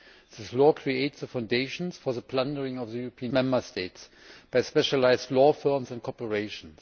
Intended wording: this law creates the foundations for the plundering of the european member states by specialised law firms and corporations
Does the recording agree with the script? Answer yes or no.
yes